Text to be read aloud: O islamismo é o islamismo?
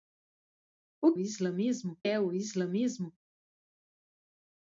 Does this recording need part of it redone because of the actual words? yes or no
no